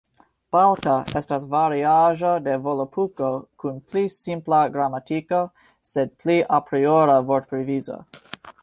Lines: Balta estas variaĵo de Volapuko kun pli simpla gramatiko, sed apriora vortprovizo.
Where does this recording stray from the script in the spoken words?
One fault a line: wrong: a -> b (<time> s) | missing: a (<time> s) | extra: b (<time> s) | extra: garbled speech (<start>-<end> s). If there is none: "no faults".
extra: pli (6.2 s)